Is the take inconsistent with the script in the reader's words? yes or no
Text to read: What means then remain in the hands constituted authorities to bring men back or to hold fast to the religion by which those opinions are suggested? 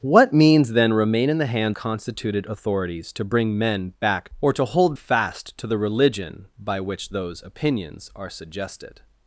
no